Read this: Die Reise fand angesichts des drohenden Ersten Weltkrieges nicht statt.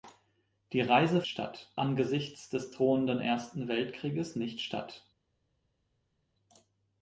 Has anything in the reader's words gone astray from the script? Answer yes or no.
yes